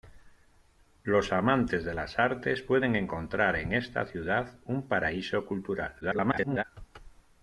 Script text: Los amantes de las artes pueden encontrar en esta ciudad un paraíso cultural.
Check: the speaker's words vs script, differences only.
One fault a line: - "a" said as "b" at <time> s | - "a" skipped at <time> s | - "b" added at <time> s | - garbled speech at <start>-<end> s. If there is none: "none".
- garbled speech at 6.0-6.6 s